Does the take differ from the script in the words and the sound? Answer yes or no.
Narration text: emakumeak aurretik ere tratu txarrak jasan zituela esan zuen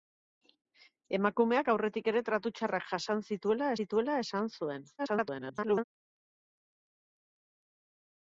yes